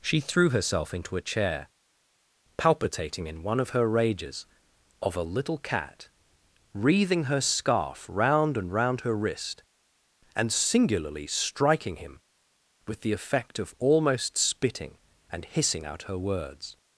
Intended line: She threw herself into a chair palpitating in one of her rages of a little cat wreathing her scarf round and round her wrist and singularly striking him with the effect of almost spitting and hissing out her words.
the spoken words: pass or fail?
pass